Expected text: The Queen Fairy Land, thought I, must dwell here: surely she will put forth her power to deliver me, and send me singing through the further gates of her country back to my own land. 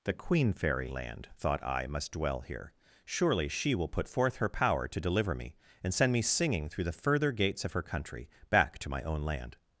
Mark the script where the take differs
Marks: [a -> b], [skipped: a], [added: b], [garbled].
The Queen Fairy Land, thought I, must dwell here: surely she will put forth her power to deliver me, and send me singing through the further gates of her country back to my own land.